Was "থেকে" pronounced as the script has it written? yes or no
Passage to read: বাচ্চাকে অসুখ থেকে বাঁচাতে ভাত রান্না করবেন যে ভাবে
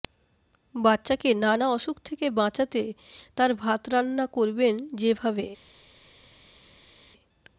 yes